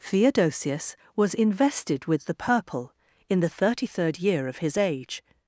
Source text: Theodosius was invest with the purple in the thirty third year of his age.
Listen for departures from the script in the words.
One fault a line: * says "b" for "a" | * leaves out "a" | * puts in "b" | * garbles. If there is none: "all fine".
* says "invested" for "invest"